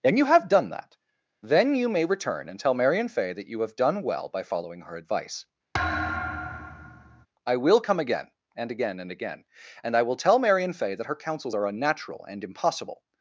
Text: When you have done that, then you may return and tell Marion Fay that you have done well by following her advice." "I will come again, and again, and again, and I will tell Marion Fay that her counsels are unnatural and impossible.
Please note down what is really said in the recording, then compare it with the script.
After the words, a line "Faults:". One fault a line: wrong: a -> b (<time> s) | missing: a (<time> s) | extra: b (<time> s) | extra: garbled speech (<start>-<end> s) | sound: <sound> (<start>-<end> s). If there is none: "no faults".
And you have done that, then you may return and tell Marion Fay that you have done well by following her advice." "I will come again, and again, and again, and I will tell Marion Fay that her counsels are unnatural and impossible.
Faults:
wrong: When -> And (0.0 s)
sound: thud (5.7-7.3 s)